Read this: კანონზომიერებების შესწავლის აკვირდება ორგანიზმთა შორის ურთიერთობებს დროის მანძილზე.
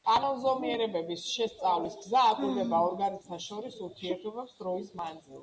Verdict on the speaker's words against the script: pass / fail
fail